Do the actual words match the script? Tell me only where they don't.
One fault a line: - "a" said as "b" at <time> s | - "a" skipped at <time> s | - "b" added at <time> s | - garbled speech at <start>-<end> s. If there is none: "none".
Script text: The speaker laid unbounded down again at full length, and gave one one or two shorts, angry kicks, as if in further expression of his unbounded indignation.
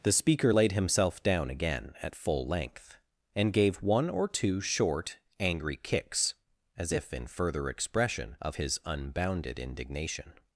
- "unbounded" said as "himself" at 0.7 s
- "one" skipped at 4.1 s
- "shorts" said as "short" at 4.6 s